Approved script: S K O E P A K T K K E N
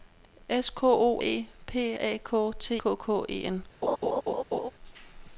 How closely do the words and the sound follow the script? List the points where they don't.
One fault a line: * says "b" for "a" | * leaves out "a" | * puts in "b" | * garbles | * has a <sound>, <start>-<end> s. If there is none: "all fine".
* has a laugh, 3.8-4.7 s